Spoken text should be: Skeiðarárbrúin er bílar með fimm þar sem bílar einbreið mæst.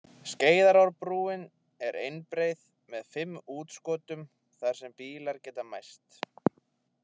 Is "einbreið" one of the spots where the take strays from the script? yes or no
yes